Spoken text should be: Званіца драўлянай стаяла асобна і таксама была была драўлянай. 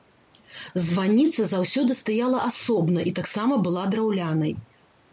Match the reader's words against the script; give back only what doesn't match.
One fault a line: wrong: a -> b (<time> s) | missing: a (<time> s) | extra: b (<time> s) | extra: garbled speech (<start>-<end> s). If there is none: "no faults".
wrong: драўлянай -> заўсёды (1.5 s)
missing: была (3.9 s)